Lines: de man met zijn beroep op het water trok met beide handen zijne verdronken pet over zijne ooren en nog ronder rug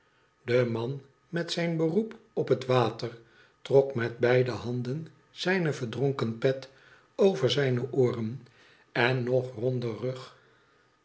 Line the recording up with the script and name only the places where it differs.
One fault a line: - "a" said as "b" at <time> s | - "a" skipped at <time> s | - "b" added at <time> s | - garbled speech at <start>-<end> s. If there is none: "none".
none